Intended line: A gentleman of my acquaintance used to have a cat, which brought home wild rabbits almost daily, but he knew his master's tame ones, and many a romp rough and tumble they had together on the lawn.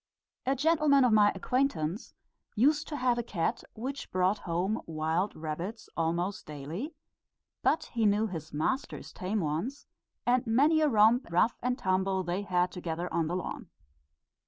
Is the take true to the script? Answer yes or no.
yes